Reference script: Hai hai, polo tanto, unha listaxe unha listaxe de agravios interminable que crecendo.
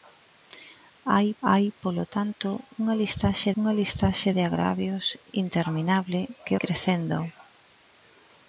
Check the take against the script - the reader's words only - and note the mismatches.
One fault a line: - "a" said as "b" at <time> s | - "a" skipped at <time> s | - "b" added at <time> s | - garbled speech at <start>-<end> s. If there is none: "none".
none